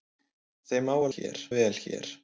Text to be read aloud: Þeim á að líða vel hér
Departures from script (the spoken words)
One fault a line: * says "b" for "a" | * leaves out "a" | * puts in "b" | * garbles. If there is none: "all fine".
* says "hér" for "líða"